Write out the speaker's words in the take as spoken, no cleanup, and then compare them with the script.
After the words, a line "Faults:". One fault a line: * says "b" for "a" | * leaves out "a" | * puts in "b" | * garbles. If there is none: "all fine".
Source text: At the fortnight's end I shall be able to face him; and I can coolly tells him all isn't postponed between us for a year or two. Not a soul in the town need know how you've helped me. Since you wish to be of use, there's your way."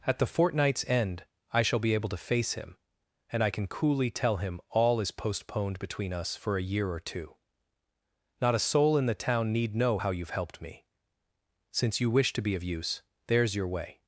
At the fortnight's end I shall be able to face him; and I can coolly tell him all is postponed between us for a year or two. Not a soul in the town need know how you've helped me. Since you wish to be of use, there's your way."
Faults:
* says "tell" for "tells"
* says "is" for "isn't"